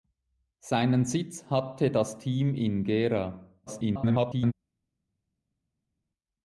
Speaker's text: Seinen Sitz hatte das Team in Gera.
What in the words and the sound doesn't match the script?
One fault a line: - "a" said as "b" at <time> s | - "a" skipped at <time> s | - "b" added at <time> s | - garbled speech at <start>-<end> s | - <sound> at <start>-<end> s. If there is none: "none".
- garbled speech at 3.7-4.5 s